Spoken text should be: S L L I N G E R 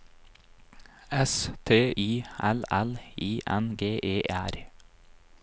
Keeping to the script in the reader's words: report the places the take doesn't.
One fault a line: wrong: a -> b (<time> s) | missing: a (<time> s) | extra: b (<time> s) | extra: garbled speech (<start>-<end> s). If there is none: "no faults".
extra: T I (1.6 s)